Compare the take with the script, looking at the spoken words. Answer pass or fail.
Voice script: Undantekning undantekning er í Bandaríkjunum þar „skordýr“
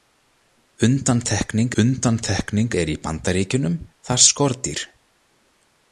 pass